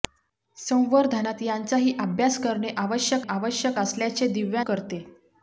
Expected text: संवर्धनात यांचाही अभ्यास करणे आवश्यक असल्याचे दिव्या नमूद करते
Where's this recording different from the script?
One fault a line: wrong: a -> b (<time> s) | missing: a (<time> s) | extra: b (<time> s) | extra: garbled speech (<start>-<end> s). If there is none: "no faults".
extra: आवश्यक (3.3 s)
missing: नमूद (4.6 s)